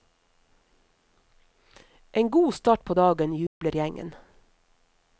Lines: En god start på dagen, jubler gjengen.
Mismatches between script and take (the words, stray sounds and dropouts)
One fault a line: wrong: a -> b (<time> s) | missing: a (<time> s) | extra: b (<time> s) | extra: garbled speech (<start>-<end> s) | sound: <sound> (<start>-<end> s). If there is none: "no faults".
sound: dropout (3.5-3.6 s)